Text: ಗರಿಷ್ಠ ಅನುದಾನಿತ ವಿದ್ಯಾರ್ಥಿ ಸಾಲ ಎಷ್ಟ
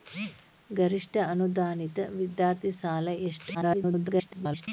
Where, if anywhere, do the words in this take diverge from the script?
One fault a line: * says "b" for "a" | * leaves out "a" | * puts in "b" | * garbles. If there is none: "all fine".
* garbles